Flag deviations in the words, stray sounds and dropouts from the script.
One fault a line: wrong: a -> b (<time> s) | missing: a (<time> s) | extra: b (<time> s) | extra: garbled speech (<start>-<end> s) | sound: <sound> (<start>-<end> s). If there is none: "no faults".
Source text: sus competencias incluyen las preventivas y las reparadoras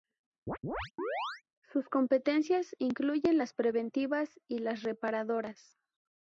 sound: chirp (0.5-1.4 s)